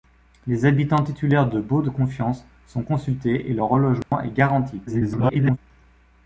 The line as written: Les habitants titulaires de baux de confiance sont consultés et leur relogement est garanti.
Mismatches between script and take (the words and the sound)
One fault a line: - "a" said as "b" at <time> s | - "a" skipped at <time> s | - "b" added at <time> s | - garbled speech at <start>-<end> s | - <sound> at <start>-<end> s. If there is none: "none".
- dropout at 4.0-4.1 s
- garbled speech at 4.9-5.6 s